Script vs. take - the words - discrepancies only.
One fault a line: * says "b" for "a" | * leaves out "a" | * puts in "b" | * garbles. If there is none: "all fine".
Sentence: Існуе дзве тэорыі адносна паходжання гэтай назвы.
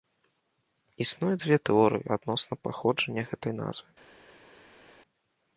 all fine